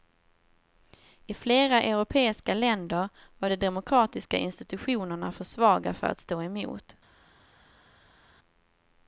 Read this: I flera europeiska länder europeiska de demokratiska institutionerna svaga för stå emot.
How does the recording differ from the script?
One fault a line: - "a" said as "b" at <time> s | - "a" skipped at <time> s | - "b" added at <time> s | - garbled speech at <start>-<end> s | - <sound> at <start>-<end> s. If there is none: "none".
- "europeiska" said as "var" at 3.4 s
- "för" added at 5.3 s
- "att" added at 6.0 s